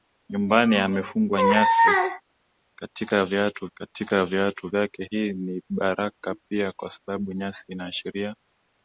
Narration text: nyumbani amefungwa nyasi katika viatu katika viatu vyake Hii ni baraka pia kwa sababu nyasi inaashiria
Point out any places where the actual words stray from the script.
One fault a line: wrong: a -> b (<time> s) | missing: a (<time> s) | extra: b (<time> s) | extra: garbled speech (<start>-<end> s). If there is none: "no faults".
no faults